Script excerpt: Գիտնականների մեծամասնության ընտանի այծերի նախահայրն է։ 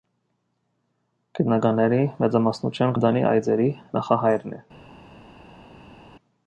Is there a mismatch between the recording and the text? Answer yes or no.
no